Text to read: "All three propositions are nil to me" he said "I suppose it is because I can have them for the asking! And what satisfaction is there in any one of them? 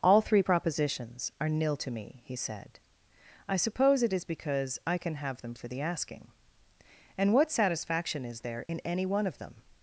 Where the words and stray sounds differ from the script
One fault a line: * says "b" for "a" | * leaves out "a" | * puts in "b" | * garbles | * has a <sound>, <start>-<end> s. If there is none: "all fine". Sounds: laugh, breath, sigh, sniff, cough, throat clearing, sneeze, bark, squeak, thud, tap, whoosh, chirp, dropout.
* has a dropout, 8.7-8.7 s